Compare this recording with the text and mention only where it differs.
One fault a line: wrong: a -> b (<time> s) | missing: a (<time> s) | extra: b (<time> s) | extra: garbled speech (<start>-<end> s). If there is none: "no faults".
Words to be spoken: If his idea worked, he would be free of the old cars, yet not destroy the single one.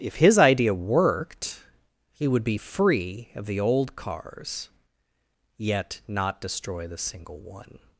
no faults